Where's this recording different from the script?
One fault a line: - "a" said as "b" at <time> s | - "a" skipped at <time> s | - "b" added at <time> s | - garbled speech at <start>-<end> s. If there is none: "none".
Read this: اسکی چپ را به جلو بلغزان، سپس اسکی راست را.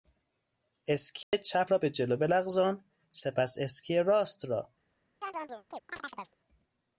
none